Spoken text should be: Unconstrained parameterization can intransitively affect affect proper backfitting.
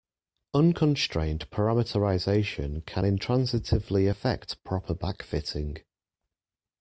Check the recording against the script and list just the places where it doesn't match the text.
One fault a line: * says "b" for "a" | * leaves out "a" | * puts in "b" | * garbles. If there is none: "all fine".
* leaves out "affect"